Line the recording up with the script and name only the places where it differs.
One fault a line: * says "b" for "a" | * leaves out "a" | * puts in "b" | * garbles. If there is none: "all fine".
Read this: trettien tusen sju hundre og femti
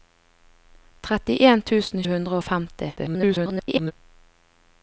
* leaves out "sju"
* garbles